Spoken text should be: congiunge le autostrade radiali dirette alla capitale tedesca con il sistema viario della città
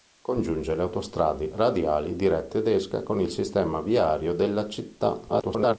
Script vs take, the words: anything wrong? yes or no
yes